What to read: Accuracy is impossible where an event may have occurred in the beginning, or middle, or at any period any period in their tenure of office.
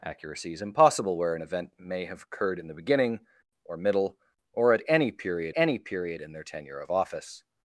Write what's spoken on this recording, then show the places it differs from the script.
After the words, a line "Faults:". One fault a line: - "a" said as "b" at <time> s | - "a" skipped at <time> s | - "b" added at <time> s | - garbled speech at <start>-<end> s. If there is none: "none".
Accuracy is impossible where an event may have occurred in the beginning, or middle, or at any period any period in their tenure of office.
Faults:
none